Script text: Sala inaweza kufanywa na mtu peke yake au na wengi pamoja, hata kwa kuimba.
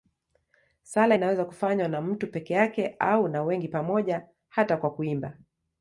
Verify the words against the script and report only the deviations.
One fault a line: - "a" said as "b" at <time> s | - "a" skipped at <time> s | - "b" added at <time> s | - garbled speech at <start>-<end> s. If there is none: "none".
none